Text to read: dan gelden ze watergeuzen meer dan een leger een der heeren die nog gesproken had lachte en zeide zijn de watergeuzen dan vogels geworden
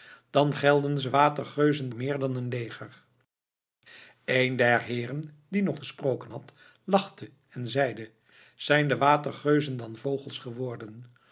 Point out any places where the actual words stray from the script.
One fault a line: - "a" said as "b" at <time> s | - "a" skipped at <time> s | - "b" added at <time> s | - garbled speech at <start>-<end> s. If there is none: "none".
none